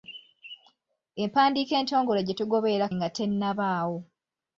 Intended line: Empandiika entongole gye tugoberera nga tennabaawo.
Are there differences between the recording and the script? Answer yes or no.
no